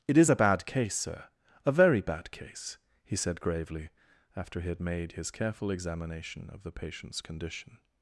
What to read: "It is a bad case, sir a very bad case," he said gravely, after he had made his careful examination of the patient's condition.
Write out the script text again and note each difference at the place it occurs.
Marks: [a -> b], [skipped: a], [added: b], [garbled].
"It is a bad case, sir a very bad case," he said gravely, after he had made his careful examination of the patient's condition.